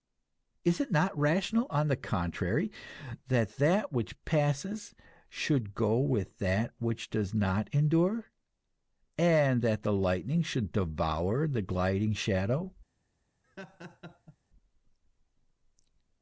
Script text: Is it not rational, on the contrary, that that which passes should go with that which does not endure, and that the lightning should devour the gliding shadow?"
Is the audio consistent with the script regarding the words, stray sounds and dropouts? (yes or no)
no